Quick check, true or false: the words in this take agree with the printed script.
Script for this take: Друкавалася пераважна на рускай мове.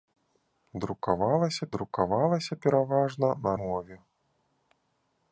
false